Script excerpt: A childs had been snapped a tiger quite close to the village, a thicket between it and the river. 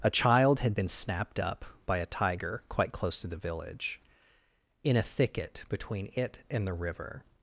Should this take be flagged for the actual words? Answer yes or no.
yes